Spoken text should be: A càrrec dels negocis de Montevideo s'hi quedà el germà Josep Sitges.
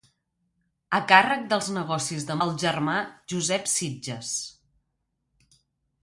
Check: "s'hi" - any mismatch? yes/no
yes